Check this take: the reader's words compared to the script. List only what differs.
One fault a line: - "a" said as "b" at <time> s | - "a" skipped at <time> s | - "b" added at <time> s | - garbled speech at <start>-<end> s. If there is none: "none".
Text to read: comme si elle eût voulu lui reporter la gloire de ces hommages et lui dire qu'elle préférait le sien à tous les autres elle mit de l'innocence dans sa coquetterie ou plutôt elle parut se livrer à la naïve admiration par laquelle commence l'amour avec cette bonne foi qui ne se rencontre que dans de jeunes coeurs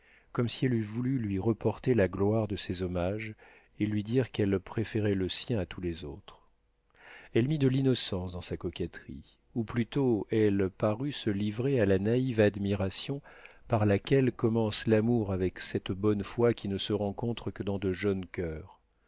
none